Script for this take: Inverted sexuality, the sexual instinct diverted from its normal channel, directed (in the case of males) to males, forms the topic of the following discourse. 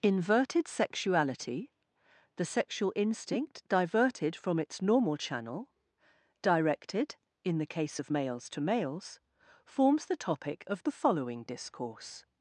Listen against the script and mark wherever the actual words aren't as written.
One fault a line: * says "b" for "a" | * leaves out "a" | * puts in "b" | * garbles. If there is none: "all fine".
all fine